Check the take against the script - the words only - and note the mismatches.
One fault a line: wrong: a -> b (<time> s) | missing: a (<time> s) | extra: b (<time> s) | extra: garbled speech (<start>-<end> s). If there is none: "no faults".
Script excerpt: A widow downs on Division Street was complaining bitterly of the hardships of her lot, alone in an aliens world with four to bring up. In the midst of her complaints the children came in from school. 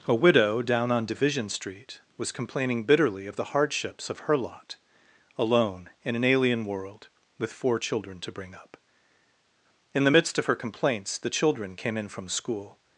wrong: downs -> down (0.6 s)
wrong: aliens -> alien (6.2 s)
extra: children (7.8 s)